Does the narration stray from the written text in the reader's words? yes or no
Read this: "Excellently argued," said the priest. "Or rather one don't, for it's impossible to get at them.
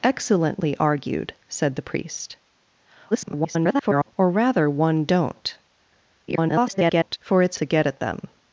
yes